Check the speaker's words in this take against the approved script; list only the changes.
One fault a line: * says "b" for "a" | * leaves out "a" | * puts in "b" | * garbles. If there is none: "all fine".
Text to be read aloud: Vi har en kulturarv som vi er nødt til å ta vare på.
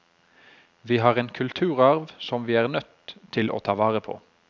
all fine